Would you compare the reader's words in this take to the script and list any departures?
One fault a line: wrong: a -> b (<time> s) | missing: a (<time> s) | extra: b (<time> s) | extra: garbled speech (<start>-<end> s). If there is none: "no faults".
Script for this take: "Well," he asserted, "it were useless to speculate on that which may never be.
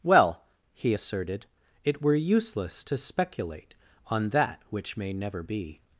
no faults